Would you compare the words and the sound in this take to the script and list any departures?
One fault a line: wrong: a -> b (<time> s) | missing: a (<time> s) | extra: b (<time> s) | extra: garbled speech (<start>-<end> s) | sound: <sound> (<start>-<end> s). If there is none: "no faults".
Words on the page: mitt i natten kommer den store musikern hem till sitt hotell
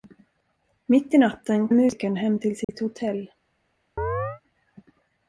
missing: kommer den store (1.7 s)
sound: dropout (2.6-2.7 s)
sound: chirp (4.0-4.4 s)